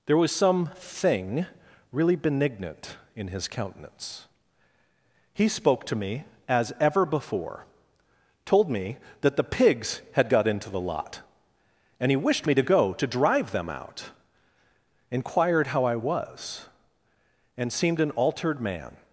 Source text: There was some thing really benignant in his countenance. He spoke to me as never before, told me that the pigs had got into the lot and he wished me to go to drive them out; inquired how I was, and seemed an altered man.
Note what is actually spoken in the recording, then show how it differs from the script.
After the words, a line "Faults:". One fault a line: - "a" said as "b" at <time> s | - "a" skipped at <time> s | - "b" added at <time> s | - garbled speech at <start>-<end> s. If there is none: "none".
There was some thing really benignant in his countenance. He spoke to me as ever before, told me that the pigs had got into the lot and he wished me to go to drive them out; inquired how I was, and seemed an altered man.
Faults:
- "never" said as "ever" at 6.8 s